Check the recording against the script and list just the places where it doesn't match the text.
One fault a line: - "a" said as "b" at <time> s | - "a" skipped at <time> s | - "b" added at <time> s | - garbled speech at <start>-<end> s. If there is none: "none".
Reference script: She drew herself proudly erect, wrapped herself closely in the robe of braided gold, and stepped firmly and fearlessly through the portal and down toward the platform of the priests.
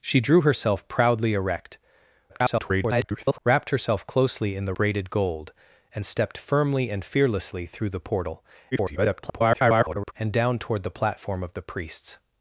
- garbled speech at 2.3-3.4 s
- "robe of" skipped at 4.7 s
- garbled speech at 8.7-10.1 s